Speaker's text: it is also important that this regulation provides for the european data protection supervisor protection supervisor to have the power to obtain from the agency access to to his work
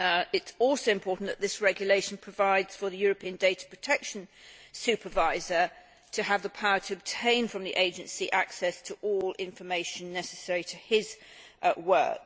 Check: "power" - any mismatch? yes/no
no